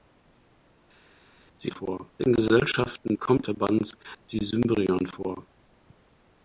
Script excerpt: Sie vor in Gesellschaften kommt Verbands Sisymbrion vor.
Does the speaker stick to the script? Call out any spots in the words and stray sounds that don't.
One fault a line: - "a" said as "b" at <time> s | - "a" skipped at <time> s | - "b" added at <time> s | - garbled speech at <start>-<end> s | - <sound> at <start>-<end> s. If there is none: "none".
none